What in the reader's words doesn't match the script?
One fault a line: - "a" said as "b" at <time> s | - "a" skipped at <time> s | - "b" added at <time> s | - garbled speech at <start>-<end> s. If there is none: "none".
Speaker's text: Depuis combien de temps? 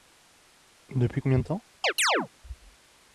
none